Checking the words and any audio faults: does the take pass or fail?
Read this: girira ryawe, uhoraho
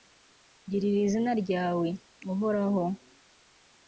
fail